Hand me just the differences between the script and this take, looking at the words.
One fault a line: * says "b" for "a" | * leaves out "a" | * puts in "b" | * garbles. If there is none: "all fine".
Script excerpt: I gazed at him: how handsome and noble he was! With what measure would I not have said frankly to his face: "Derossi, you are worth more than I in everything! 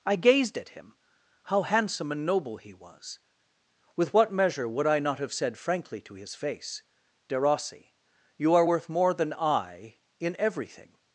all fine